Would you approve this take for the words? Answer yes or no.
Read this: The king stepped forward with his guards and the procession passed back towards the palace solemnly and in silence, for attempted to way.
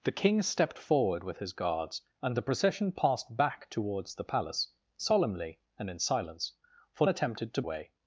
yes